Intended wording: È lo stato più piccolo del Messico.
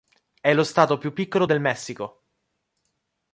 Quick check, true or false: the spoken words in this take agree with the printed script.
true